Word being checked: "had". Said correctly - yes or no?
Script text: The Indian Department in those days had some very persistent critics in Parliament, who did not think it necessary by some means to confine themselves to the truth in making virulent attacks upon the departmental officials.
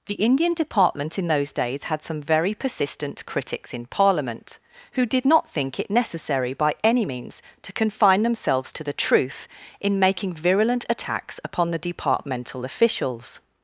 yes